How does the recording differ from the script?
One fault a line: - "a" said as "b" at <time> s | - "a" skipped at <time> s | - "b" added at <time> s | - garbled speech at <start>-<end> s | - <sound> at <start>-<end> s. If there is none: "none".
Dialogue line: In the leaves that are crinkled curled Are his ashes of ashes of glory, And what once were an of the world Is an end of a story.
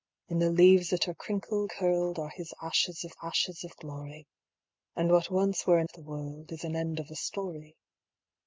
none